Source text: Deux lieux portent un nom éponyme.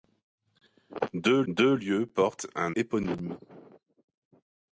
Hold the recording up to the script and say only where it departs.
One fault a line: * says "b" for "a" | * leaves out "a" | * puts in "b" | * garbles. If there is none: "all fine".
* puts in "deux"
* leaves out "nom"